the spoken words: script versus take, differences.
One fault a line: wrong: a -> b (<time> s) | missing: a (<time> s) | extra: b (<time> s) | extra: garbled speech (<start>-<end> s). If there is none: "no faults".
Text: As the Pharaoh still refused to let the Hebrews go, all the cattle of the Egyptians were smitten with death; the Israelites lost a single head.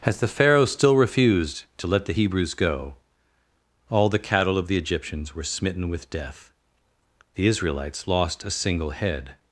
no faults